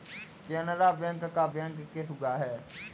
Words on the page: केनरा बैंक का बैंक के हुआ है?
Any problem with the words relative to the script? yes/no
no